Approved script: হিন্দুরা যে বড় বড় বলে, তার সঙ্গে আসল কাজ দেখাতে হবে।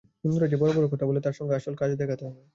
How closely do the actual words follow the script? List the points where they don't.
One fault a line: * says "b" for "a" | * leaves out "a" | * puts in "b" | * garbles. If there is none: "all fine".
* puts in "কথা"